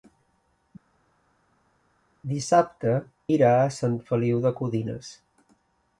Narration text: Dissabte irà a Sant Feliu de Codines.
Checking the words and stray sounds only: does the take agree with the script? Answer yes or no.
yes